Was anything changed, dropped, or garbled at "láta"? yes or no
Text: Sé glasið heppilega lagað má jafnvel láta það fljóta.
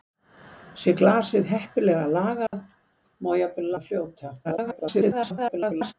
yes